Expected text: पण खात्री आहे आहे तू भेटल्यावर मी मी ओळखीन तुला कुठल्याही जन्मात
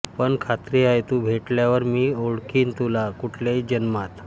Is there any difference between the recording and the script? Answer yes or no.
yes